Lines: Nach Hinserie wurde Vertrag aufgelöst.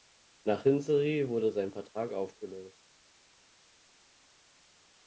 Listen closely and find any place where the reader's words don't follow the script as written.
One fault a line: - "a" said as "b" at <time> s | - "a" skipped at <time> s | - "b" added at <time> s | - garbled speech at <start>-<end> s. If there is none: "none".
- "sein" added at 1.5 s